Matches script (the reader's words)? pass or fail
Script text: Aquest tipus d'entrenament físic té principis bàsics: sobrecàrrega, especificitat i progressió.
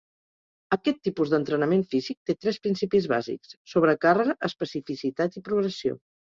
fail